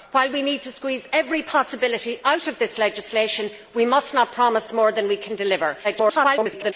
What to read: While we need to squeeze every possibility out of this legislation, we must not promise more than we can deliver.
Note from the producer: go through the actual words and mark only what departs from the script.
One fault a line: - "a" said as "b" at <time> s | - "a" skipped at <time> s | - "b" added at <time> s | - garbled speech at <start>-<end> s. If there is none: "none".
- garbled speech at 5.8-6.7 s